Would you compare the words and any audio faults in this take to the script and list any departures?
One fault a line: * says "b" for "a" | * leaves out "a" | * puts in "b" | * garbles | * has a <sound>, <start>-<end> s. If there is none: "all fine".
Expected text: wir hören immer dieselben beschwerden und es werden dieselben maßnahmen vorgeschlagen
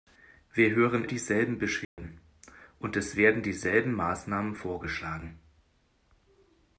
* leaves out "immer"
* has a dropout, 1.8-2.0 s